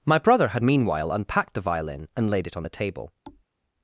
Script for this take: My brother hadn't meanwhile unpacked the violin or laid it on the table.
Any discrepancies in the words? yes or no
yes